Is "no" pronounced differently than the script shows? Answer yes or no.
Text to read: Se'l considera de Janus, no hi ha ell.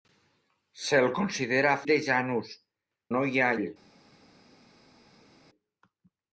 no